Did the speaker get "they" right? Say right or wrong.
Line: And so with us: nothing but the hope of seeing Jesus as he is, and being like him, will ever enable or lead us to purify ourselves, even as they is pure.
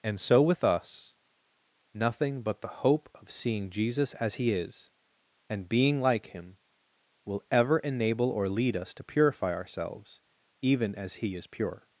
wrong